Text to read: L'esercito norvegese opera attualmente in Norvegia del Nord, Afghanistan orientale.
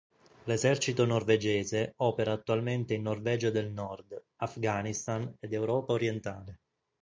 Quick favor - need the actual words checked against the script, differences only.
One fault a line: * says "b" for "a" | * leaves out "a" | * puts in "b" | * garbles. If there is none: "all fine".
* puts in "ed Europa"